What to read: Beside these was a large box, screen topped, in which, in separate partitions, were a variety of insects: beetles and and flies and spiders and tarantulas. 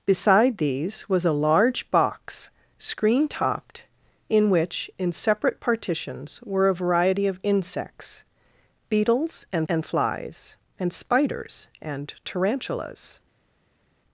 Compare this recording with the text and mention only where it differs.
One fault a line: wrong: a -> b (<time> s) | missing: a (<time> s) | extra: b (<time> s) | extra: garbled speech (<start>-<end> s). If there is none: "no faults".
no faults